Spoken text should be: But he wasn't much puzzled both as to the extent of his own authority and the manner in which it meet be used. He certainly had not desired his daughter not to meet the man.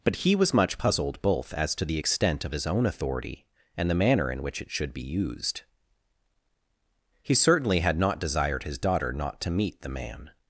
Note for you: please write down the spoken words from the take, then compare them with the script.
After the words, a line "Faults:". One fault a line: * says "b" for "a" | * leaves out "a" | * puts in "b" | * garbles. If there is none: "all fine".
But he was much puzzled both as to the extent of his own authority and the manner in which it should be used. He certainly had not desired his daughter not to meet the man.
Faults:
* says "was" for "wasn't"
* says "should" for "meet"